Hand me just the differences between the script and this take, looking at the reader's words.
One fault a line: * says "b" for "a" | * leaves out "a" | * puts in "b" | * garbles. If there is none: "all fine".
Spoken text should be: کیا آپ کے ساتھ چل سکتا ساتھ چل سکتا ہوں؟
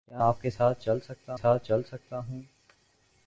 all fine